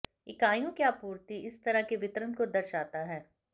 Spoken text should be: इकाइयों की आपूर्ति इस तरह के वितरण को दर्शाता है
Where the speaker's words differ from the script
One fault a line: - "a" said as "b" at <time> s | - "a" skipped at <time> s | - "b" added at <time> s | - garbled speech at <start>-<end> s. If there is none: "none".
none